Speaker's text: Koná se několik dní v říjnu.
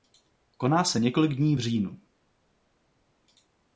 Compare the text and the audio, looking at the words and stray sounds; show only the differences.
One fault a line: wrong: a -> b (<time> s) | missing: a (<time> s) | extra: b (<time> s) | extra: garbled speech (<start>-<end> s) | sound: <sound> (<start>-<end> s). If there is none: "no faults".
no faults